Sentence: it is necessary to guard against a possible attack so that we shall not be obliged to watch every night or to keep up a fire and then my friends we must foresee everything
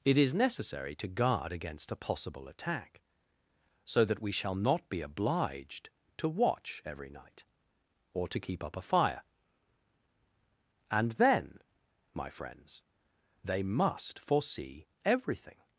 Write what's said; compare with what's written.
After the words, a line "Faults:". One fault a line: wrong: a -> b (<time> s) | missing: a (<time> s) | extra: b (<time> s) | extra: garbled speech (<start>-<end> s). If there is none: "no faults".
it is necessary to guard against a possible attack so that we shall not be obliged to watch every night or to keep up a fire and then my friends they must foresee everything
Faults:
wrong: we -> they (13.4 s)